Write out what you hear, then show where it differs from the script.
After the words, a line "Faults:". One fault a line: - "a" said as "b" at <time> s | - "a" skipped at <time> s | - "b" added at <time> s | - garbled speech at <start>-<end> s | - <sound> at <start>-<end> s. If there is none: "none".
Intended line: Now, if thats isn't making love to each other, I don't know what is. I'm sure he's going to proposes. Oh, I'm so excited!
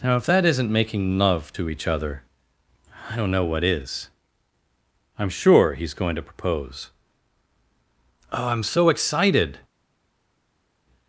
Now, if that isn't making love to each other, I don't know what is. I'm sure he's going to propose. Oh, I'm so excited!
Faults:
- "thats" said as "that" at 0.2 s
- "proposes" said as "propose" at 6.2 s